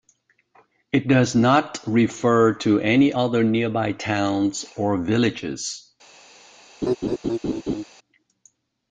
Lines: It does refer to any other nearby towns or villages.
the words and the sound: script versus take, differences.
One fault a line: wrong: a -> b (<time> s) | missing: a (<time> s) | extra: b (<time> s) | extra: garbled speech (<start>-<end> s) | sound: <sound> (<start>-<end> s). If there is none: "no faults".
extra: not (1.4 s)
sound: laugh (6.8-7.8 s)